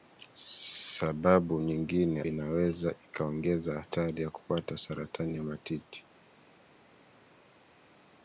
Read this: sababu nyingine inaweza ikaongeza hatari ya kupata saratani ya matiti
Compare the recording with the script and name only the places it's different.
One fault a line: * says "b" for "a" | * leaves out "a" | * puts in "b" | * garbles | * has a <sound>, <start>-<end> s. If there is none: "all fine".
all fine